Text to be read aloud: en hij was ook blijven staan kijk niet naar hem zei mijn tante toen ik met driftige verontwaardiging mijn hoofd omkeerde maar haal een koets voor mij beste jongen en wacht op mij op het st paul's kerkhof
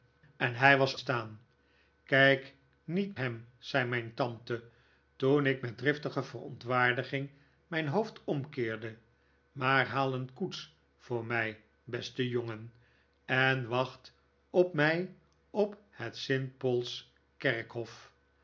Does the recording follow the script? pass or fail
fail